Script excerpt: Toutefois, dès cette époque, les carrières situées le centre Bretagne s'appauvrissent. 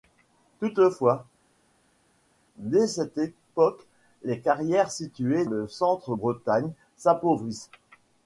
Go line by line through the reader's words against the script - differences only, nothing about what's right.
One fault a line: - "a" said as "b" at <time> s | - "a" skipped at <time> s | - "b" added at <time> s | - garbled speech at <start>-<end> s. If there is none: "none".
none